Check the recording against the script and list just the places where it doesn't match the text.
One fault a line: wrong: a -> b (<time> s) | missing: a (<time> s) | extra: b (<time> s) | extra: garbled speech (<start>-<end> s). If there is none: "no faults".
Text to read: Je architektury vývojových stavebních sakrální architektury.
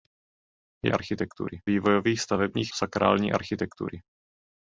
no faults